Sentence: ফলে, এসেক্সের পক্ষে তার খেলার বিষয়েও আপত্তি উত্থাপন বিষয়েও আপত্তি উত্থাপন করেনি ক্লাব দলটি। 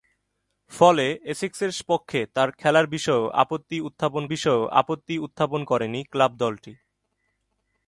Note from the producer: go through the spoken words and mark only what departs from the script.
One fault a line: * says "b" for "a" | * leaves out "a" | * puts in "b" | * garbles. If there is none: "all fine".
all fine